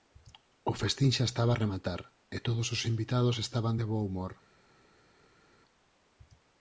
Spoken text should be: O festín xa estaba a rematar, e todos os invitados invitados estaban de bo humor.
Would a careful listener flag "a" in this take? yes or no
no